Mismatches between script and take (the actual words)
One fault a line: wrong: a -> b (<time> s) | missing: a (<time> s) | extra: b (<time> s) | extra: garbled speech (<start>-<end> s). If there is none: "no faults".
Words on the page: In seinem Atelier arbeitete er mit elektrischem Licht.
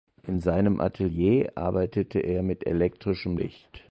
no faults